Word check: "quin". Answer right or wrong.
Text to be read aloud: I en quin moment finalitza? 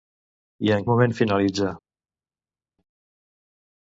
wrong